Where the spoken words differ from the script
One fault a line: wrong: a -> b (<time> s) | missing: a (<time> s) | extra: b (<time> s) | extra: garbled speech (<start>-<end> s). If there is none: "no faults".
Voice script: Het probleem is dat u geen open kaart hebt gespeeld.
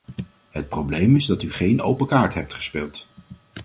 no faults